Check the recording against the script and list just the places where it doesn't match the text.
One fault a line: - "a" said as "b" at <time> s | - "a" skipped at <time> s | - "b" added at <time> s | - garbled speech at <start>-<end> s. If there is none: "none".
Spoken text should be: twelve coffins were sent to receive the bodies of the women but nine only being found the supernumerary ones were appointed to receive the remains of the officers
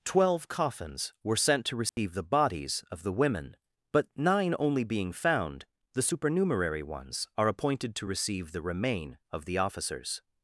- "were" said as "are" at 7.4 s
- "remains" said as "remain" at 8.6 s